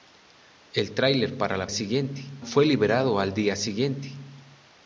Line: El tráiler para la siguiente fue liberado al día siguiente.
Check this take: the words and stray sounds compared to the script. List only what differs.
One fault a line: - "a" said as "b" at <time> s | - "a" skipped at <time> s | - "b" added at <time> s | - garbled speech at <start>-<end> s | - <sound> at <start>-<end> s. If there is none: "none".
none